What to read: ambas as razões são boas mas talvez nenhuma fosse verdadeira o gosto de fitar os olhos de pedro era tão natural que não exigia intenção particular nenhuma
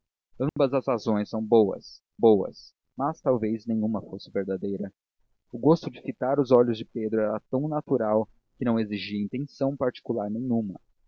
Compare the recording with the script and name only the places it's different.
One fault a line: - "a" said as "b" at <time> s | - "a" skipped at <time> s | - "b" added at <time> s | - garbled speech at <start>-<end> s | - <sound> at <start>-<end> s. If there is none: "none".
- dropout at 0.5-0.6 s
- "boas" added at 2.2 s